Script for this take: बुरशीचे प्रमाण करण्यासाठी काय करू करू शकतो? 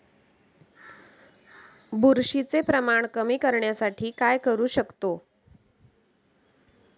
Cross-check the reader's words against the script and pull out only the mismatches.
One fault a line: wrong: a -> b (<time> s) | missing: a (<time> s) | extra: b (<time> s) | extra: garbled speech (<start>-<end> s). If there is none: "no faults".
extra: कमी (3.1 s)
missing: करू (4.7 s)